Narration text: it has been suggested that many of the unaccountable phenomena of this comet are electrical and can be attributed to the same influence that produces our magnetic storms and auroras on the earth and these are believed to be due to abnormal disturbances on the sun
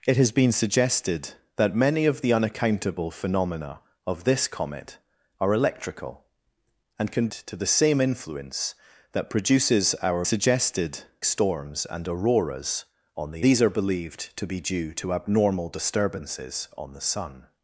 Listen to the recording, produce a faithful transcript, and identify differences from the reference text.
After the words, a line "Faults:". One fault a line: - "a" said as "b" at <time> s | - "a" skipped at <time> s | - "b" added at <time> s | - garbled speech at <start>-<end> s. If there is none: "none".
it has been suggested that many of the unaccountable phenomena of this comet are electrical and can to the same influence that produces our suggested storms and auroras on the these are believed to be due to abnormal disturbances on the sun
Faults:
- "be attributed" skipped at 7.3 s
- "magnetic" said as "suggested" at 10.2 s
- "earth and" skipped at 13.5 s